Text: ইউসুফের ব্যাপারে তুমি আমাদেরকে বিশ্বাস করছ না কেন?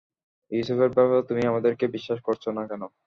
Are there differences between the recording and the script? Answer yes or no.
no